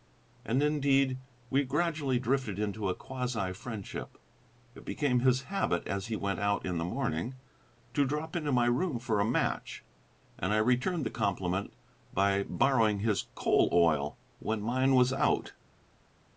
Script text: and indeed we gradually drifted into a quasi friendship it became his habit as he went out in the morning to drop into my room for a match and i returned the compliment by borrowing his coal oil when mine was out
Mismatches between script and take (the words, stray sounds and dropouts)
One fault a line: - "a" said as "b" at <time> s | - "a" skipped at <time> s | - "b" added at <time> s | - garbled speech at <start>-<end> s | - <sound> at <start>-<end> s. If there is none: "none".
none